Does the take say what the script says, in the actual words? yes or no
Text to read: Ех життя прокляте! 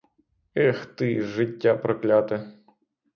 no